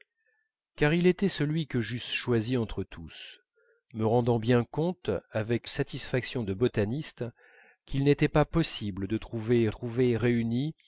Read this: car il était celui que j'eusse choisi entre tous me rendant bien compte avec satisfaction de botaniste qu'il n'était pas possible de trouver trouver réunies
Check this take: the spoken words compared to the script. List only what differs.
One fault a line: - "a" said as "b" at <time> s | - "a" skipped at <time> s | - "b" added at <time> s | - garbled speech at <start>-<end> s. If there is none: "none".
none